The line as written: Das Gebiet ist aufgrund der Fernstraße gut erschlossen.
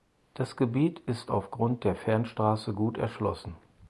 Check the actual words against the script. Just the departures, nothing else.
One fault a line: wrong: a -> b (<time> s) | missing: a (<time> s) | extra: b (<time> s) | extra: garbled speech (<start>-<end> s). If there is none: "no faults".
no faults